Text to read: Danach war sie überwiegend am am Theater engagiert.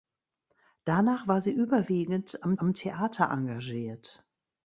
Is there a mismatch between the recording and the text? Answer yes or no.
no